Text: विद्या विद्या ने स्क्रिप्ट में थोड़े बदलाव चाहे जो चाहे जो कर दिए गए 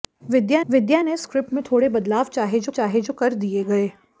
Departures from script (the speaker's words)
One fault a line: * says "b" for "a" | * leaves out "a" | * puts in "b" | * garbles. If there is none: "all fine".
all fine